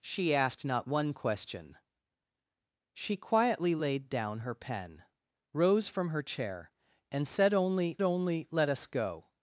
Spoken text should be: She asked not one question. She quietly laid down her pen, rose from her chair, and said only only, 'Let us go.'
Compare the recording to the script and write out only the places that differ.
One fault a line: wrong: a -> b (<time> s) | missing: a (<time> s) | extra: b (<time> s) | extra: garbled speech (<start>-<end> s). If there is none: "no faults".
no faults